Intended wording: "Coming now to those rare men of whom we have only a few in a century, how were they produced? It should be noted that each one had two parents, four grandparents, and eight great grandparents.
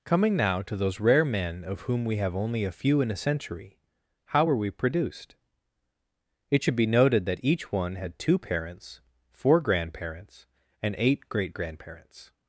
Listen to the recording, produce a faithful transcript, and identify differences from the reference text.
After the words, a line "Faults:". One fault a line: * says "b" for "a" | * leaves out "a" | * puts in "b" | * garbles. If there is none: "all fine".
"Coming now to those rare men of whom we have only a few in a century, how were we produced? It should be noted that each one had two parents, four grandparents, and eight great grandparents.
Faults:
* says "we" for "they"